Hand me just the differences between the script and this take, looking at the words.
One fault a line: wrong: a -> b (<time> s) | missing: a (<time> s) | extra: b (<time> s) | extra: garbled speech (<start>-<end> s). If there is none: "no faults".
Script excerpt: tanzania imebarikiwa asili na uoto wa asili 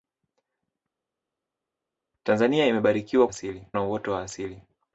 no faults